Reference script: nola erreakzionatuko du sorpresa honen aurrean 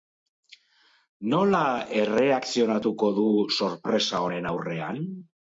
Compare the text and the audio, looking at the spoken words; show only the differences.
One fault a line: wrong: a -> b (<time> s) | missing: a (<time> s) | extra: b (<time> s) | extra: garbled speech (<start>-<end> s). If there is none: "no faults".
no faults